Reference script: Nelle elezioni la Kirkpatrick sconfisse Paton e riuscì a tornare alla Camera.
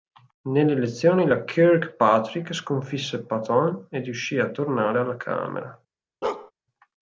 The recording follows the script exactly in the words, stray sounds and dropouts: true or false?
false